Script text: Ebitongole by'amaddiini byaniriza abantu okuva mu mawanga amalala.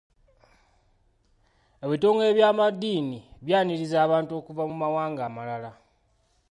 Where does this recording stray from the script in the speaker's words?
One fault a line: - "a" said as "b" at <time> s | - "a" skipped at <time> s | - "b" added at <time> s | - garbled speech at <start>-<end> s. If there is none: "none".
none